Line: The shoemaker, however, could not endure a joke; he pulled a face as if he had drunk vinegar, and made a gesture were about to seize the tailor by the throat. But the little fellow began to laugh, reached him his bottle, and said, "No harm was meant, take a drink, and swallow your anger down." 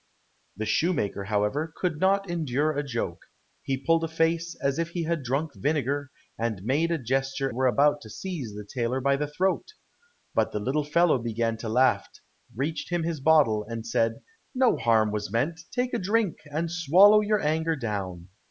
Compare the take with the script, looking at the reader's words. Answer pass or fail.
pass